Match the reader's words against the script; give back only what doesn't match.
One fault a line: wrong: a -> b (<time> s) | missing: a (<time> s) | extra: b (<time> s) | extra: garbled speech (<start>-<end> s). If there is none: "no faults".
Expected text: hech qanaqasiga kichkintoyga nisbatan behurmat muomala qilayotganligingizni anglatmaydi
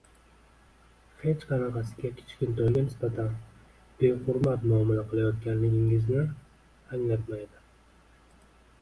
no faults